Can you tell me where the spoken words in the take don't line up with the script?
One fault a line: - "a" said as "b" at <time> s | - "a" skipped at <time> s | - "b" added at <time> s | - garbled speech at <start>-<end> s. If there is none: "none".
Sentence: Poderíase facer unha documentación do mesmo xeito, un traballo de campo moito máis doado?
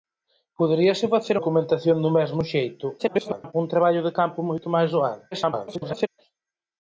- "unha" skipped at 1.4 s
- garbled speech at 3.0-3.5 s
- garbled speech at 5.3-6.1 s